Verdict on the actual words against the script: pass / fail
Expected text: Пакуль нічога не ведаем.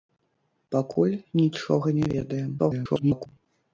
fail